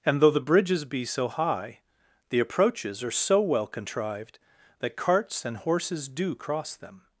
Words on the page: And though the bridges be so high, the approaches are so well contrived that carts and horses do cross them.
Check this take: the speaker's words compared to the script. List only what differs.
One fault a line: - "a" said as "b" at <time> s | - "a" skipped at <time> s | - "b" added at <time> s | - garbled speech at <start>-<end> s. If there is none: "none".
none